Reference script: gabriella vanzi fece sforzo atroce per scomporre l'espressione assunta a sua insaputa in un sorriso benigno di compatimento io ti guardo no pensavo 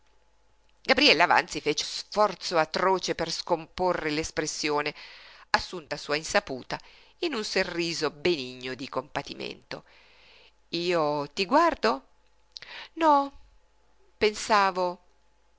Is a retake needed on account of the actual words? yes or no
no